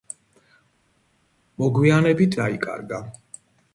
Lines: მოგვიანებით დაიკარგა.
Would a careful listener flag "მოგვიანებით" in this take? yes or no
no